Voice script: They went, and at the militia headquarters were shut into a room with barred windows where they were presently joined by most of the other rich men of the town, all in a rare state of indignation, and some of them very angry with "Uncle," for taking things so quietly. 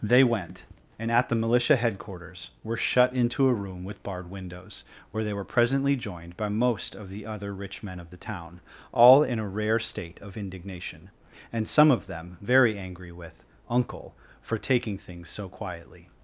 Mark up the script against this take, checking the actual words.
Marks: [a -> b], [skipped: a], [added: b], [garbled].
They went, and at the militia headquarters were shut into a room with barred windows where they were presently joined by most of the other rich men of the town, all in a rare state of indignation, and some of them very angry with "Uncle," for taking things so quietly.